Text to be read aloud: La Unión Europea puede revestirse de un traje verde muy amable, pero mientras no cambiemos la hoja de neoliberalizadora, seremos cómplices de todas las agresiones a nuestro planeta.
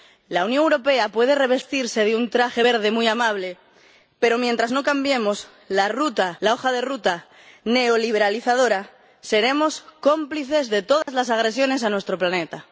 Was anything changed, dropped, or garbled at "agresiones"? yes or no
no